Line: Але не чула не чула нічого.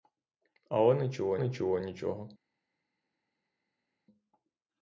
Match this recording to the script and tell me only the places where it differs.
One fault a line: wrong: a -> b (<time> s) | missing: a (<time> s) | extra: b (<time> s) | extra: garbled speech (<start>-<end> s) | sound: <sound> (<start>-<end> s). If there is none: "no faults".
no faults